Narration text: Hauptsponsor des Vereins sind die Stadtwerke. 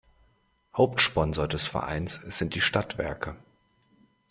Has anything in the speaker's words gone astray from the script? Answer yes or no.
no